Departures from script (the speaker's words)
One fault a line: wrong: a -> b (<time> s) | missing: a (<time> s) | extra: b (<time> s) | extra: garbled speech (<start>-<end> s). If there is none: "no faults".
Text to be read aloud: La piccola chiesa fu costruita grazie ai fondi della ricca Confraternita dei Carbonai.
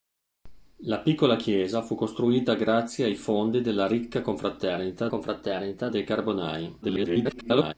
extra: Confraternita (5.1 s)
extra: garbled speech (6.8-7.7 s)